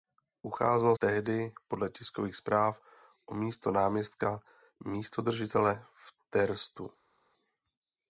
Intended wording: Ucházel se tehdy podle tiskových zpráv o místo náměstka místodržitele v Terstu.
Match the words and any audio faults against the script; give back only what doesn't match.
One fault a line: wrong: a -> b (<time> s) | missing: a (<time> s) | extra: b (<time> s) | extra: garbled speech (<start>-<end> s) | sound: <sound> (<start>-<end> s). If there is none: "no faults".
missing: se (0.9 s)